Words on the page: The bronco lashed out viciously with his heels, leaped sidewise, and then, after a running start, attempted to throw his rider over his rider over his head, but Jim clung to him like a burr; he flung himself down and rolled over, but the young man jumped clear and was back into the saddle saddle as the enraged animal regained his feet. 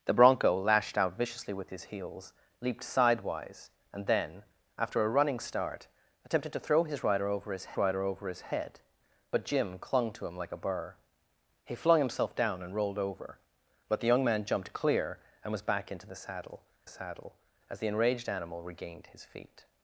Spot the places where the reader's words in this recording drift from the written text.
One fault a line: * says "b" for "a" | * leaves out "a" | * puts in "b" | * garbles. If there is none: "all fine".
all fine